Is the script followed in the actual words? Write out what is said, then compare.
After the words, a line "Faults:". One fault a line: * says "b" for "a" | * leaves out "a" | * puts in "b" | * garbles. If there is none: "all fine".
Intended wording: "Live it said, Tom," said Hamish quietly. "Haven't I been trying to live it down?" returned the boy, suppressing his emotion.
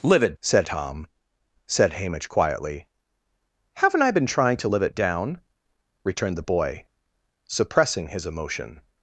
"Live it said, Tom," said Hamish quietly. "Haven't I been trying to live it down?" returned the boy, suppressing his emotion.
Faults:
all fine